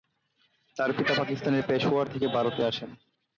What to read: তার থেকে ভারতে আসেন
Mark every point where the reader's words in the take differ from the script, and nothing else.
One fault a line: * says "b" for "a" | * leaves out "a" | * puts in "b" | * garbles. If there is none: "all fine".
* puts in "পিতা পাকিস্তানের পেশোয়ার"